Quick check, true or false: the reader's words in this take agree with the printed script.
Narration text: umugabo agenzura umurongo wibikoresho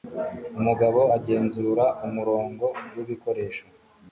true